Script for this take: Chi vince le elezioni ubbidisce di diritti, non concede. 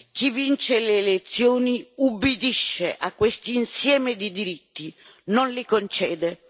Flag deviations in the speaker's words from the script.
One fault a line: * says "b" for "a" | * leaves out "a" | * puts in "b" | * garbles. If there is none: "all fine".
* puts in "a questo insieme"
* puts in "li"